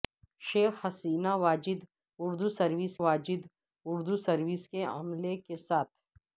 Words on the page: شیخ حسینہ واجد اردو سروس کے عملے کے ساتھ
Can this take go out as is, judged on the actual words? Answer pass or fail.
fail